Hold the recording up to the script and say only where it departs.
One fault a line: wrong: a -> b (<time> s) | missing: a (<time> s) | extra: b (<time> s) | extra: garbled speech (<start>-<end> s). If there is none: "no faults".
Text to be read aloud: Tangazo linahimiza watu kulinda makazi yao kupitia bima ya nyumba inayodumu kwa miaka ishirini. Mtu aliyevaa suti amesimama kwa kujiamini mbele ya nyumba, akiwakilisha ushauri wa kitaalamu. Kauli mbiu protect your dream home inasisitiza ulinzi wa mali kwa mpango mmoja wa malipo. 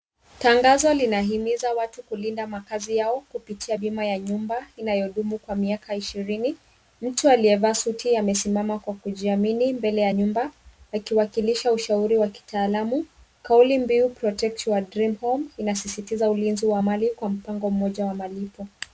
no faults